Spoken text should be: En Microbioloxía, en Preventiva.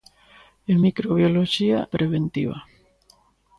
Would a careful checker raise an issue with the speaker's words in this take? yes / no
yes